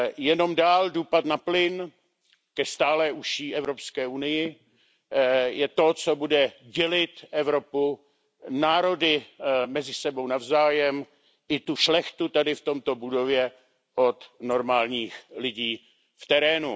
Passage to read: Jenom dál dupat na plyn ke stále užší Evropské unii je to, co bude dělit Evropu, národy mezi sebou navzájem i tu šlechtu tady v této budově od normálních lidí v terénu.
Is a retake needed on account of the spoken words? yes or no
no